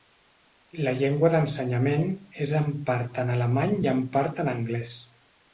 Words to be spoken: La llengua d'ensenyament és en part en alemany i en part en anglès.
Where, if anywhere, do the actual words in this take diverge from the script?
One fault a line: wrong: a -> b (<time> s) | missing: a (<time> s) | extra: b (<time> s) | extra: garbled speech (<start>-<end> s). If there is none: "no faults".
no faults